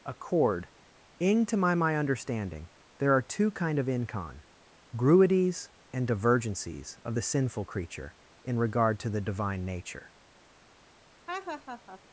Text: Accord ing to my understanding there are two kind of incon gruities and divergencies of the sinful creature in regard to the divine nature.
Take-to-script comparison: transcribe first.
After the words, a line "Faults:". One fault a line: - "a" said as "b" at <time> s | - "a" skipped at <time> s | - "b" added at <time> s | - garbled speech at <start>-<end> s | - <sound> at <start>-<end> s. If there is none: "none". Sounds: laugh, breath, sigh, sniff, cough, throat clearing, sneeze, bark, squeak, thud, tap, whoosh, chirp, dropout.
Accord ing to my my understanding there are two kind of incon gruities and divergencies of the sinful creature in regard to the divine nature.
Faults:
- "my" added at 1.8 s
- laugh at 11.3-12.0 s